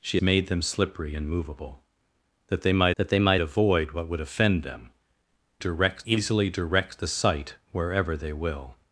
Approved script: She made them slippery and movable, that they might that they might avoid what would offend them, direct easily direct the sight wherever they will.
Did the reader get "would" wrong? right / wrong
right